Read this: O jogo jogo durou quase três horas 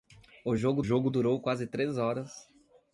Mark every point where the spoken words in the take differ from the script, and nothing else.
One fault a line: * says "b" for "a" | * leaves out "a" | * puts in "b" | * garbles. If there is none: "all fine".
all fine